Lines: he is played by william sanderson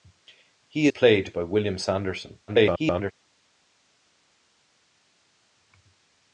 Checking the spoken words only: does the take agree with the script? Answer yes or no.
no